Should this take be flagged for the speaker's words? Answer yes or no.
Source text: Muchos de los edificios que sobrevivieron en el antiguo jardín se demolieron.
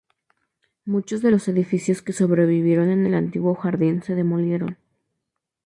no